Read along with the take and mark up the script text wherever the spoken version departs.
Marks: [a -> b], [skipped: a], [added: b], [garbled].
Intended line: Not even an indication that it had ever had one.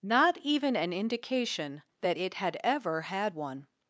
Not even an indication that it had ever had one.